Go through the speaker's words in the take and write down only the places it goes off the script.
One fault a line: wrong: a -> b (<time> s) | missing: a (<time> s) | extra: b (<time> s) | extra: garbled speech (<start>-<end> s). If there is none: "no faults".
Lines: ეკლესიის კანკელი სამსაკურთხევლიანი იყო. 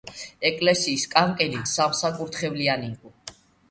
no faults